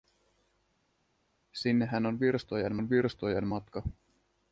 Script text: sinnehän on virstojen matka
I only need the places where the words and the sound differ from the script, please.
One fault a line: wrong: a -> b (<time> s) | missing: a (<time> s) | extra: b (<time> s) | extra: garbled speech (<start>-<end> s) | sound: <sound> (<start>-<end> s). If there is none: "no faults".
extra: on virstojen (2.7 s)